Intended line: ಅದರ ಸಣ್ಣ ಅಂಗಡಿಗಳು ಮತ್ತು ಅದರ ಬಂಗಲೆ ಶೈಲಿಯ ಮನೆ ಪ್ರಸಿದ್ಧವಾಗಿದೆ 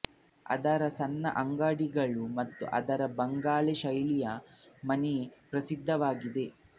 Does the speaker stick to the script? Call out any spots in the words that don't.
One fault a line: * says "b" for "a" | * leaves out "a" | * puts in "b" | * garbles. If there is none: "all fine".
all fine